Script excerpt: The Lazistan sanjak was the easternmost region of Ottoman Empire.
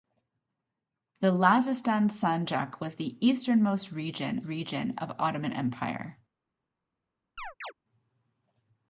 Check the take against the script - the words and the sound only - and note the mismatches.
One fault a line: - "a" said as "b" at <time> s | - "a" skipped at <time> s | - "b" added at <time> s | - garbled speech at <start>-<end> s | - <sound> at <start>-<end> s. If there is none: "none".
- "region" added at 4.4 s
- chirp at 7.4-7.7 s